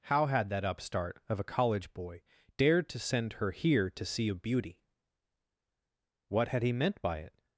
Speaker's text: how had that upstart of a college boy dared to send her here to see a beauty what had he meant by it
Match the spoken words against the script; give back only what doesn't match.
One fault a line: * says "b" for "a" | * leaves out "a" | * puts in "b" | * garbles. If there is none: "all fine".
all fine